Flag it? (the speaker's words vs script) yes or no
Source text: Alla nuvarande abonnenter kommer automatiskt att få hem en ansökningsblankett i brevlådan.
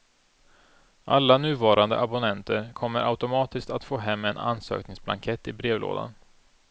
no